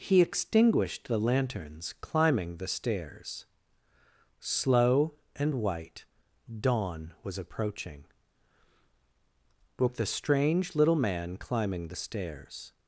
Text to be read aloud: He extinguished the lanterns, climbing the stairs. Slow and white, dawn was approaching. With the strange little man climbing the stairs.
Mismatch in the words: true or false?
true